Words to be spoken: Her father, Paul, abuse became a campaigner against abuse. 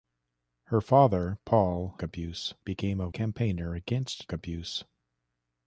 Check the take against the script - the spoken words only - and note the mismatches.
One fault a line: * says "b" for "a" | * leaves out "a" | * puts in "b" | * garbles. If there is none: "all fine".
all fine